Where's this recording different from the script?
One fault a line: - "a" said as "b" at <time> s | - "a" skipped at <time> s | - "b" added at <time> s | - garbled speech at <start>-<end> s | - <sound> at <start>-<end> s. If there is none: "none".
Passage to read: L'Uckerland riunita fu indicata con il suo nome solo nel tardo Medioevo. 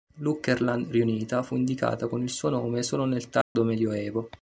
- dropout at 3.4-3.6 s